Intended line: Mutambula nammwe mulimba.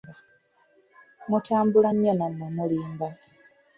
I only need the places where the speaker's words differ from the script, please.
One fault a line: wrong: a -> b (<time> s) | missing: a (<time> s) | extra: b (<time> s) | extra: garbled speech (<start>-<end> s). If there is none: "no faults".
extra: nnyo (1.9 s)